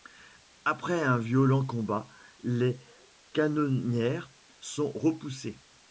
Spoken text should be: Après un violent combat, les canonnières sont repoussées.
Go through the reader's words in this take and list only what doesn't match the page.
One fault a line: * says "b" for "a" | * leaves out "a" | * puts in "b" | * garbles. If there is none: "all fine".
all fine